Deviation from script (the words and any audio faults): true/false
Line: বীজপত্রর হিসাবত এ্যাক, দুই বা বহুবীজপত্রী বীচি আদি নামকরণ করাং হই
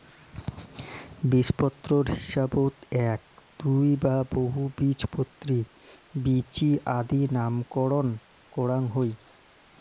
false